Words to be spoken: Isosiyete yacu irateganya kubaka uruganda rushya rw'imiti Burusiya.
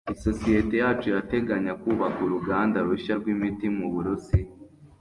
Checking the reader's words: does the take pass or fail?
fail